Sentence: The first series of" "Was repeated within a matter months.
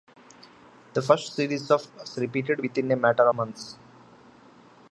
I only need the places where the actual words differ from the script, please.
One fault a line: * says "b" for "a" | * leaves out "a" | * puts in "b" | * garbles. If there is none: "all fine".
all fine